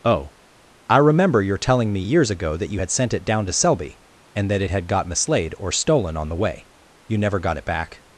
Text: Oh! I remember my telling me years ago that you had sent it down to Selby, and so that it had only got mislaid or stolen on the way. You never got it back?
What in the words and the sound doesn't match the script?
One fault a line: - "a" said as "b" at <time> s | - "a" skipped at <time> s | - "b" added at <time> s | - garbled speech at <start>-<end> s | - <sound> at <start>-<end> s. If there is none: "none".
- "my" said as "your" at 1.4 s
- "so" skipped at 4.5 s
- "only" skipped at 4.9 s